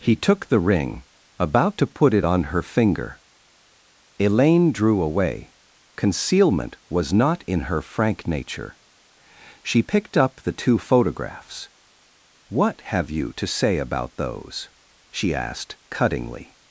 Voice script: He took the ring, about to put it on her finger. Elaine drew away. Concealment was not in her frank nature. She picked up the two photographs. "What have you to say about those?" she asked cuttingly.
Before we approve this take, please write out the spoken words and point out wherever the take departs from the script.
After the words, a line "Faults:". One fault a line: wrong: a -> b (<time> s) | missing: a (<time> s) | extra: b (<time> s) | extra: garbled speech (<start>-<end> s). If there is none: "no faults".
He took the ring, about to put it on her finger. Elaine drew away. Concealment was not in her frank nature. She picked up the two photographs. "What have you to say about those?" she asked cuttingly.
Faults:
no faults